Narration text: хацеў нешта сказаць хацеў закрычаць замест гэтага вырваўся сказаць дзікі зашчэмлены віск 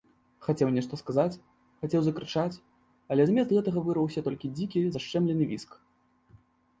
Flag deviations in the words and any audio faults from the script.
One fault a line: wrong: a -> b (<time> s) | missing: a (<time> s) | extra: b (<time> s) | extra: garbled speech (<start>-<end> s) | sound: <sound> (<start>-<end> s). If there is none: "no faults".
extra: але (3.1 s)
wrong: сказаць -> толькі (4.3 s)